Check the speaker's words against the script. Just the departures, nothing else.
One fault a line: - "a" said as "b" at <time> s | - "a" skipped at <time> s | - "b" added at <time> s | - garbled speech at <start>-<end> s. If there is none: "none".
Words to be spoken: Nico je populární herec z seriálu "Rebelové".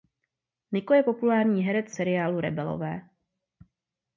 none